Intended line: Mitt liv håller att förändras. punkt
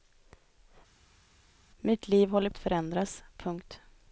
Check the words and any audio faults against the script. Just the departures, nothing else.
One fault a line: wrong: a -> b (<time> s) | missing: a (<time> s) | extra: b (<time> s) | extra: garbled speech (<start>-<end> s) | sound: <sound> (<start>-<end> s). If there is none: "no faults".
no faults